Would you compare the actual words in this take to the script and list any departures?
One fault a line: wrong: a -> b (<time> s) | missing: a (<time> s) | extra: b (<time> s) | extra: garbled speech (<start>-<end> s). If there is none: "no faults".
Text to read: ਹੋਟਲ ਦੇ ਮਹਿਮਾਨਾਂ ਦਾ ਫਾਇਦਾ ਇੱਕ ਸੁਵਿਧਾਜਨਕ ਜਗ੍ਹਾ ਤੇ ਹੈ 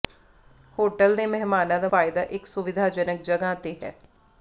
no faults